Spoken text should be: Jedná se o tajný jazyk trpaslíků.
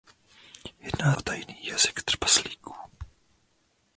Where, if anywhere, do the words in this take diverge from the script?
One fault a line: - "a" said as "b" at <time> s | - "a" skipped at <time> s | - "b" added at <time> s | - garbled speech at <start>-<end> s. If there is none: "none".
- "se" skipped at 1.1 s